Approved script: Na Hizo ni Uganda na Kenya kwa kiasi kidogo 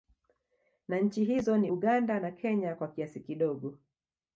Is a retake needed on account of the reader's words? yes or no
yes